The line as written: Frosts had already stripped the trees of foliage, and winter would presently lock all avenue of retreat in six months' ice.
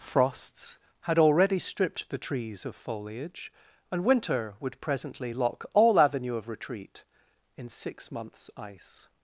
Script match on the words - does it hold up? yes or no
yes